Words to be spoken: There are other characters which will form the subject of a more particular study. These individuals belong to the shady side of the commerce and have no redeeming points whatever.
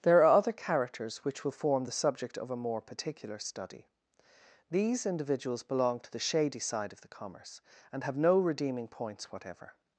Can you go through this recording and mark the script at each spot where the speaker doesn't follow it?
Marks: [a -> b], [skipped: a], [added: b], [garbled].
There are other characters which will form the subject of a more particular study. These individuals belong to the shady side of the commerce and have no redeeming points whatever.